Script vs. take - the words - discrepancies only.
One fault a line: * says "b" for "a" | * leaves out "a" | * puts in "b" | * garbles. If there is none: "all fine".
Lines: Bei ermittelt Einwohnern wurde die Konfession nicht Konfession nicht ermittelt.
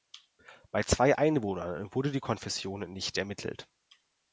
* says "zwei" for "ermittelt"
* leaves out "Konfession nicht"